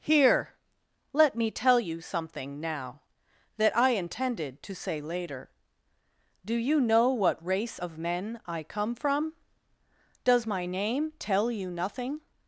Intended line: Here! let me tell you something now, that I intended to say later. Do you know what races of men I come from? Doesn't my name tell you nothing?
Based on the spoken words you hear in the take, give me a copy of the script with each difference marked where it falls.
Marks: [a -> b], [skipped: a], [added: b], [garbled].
Here! let me tell you something now, that I intended to say later. Do you know what [races -> race] of men I come from? [Doesn't -> Does] my name tell you nothing?